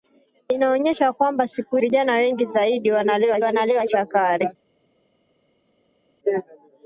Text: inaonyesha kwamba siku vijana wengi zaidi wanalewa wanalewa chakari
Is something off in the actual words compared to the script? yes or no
no